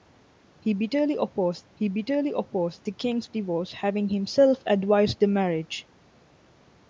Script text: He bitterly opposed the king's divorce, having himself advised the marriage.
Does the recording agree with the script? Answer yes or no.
no